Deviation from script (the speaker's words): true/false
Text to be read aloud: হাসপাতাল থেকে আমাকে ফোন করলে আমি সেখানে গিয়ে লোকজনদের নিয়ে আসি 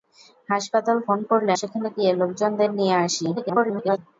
true